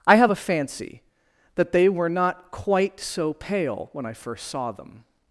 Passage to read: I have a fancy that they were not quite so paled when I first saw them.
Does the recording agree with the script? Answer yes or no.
no